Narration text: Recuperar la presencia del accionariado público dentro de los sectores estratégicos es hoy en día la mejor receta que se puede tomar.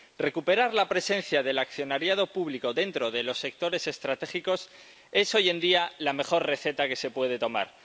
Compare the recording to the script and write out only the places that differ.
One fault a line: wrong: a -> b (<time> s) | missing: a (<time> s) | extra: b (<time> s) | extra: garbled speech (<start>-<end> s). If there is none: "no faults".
no faults